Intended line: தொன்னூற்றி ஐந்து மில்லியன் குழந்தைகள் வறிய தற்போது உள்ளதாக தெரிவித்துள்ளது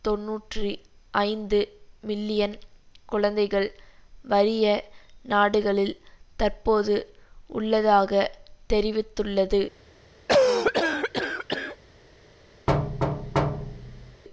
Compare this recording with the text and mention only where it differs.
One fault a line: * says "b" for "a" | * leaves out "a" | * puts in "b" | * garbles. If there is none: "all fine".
* puts in "நாடுகளில்"